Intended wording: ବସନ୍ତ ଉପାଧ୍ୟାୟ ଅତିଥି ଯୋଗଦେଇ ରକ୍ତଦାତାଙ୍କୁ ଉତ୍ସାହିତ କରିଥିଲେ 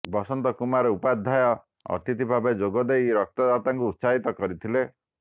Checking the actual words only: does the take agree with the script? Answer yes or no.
no